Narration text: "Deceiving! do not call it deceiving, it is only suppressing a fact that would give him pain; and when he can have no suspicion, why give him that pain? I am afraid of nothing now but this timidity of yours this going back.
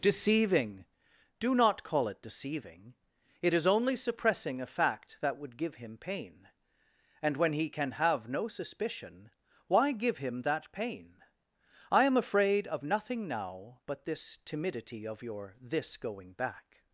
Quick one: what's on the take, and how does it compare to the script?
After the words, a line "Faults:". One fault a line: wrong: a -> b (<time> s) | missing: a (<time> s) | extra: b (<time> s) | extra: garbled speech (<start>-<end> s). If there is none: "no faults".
"Deceiving! do not call it deceiving, it is only suppressing a fact that would give him pain; and when he can have no suspicion, why give him that pain? I am afraid of nothing now but this timidity of your this going back.
Faults:
wrong: yours -> your (15.2 s)